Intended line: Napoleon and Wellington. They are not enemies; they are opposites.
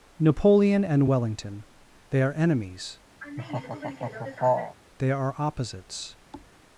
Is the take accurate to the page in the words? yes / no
no